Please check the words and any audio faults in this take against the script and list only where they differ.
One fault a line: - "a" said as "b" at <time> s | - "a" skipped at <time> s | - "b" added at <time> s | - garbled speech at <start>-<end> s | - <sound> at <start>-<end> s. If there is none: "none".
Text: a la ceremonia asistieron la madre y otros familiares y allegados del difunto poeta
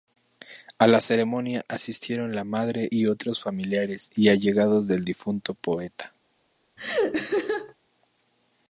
- laugh at 6.8-7.7 s